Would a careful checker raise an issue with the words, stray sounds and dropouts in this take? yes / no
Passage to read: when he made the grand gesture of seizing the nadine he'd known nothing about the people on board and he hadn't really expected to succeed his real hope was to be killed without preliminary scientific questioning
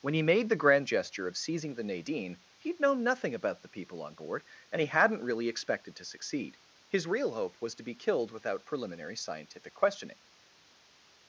no